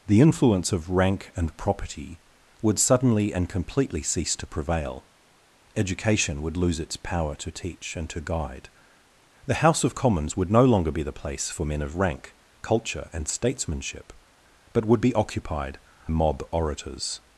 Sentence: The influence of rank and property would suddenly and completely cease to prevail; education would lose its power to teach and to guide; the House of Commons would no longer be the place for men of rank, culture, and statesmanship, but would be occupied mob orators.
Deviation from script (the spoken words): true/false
false